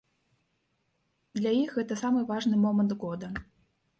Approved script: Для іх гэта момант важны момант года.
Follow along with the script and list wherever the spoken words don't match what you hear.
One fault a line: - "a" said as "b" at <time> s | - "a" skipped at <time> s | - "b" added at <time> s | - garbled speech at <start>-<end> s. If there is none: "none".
- "момант" said as "самы" at 2.0 s